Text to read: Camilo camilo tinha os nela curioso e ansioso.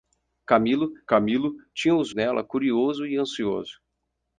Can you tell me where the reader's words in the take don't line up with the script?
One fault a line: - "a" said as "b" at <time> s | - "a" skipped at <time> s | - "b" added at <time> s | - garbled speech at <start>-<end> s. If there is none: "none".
none